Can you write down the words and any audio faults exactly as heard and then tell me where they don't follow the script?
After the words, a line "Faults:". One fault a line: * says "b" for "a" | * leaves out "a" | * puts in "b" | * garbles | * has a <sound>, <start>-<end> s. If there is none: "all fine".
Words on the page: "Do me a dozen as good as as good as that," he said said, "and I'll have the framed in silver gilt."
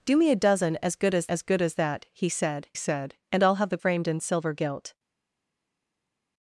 "Do me a dozen as good as as good as that," he said said, "and I'll have the framed in silver gilt."
Faults:
all fine